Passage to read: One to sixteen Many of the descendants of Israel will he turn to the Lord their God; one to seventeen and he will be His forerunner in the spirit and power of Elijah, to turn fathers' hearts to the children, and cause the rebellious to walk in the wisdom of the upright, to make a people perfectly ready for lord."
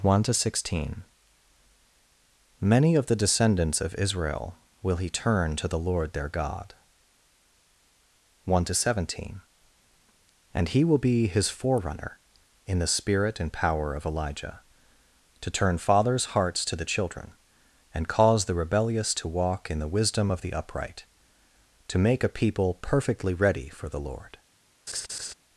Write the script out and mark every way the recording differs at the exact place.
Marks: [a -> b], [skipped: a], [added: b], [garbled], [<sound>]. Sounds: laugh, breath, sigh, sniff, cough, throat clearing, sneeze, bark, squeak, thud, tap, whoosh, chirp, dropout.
One to sixteen Many of the descendants of Israel will he turn to the Lord their God; one to seventeen and he will be His forerunner in the spirit and power of Elijah, to turn fathers' hearts to the children, and cause the rebellious to walk in the wisdom of the upright, to make a people perfectly ready for [added: the] lord." [laugh]